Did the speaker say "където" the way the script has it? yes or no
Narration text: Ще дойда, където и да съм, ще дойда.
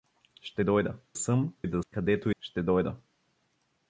no